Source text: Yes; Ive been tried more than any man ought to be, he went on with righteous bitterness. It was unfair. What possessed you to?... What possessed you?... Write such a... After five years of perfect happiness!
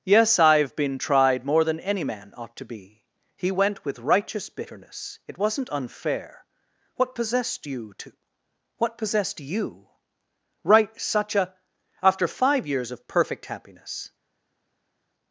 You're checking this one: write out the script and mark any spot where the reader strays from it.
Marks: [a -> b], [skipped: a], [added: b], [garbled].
Yes; Ive been tried more than any man ought to be, he went [skipped: on] with righteous bitterness. It [was -> wasn't] unfair. What possessed you to?... What possessed you?... Write such a... After five years of perfect happiness!